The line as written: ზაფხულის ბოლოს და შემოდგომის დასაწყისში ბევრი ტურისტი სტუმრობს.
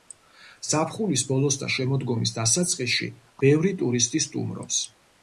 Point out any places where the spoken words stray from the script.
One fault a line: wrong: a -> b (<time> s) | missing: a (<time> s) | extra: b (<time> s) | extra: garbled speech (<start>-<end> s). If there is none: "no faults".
no faults